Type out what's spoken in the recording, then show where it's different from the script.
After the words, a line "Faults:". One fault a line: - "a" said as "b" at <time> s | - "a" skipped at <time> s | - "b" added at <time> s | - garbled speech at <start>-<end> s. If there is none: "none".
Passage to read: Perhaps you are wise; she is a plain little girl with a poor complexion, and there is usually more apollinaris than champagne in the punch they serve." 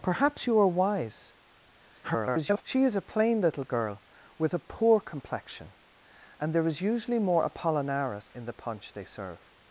Perhaps you are wise; [garbled] she is a plain little girl with a poor complexion, and there is usually more apollinaris in the punch they serve."
Faults:
- garbled speech at 2.0-2.6 s
- "than champagne" skipped at 8.3 s